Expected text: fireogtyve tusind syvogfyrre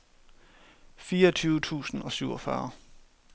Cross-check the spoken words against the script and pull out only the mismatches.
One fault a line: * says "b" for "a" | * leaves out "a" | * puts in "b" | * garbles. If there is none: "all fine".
* puts in "og"